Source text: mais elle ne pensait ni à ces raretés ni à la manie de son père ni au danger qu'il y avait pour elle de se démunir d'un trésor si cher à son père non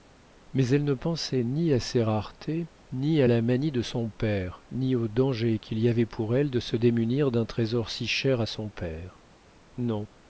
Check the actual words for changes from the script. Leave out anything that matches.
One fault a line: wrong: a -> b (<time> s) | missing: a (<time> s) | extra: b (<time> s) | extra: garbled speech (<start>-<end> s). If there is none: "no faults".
no faults